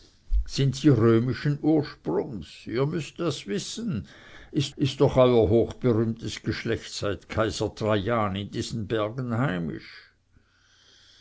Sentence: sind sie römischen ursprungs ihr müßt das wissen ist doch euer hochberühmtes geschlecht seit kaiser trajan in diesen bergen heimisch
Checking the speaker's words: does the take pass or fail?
fail